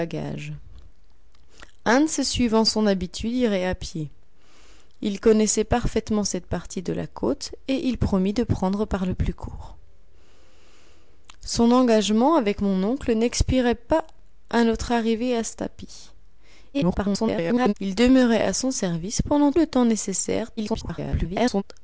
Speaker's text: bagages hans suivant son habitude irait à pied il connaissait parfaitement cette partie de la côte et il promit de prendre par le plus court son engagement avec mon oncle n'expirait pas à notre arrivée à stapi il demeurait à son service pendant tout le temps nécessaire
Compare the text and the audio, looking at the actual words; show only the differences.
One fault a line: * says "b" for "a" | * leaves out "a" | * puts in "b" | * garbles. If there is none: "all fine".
* garbles
* leaves out "tout"
* garbles